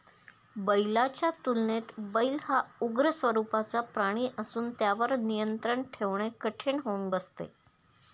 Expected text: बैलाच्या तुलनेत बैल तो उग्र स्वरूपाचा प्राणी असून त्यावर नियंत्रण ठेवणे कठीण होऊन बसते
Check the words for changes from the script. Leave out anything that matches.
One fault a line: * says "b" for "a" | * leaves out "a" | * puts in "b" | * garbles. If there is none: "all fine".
* says "हा" for "तो"